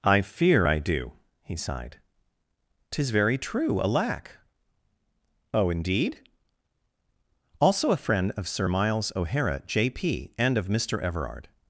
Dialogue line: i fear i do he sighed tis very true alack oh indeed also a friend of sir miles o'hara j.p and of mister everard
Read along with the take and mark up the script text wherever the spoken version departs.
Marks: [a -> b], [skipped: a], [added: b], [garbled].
i fear i do he sighed tis very true alack oh indeed also a friend of sir miles o'hara j.p and of mister everard